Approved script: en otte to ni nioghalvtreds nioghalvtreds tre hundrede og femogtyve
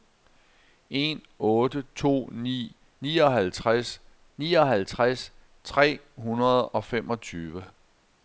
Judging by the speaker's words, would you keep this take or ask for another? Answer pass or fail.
pass